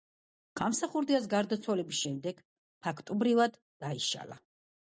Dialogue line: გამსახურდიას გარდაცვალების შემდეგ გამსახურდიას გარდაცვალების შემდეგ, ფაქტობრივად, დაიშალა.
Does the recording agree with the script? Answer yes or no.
no